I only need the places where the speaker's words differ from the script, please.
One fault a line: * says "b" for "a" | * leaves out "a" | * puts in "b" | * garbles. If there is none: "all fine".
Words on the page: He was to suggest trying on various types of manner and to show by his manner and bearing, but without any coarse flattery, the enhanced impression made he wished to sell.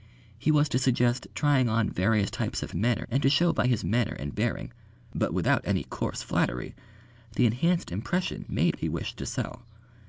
all fine